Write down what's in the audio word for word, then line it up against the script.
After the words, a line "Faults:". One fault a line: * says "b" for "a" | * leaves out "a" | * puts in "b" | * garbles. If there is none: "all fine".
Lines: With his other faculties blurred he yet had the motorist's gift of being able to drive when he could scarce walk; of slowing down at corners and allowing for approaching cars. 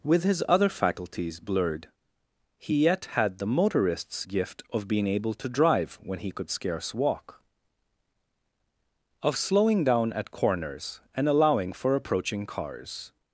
With his other faculties blurred he yet had the motorist's gift of being able to drive when he could scarce walk; of slowing down at corners and allowing for approaching cars.
Faults:
all fine